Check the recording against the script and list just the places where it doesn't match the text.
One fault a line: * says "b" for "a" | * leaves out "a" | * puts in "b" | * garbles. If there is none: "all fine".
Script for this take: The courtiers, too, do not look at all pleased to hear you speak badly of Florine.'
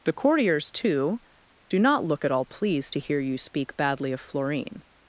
all fine